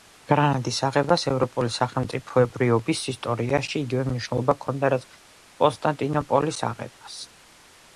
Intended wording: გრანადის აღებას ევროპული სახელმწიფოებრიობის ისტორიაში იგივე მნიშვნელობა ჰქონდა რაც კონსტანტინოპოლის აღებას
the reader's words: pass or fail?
pass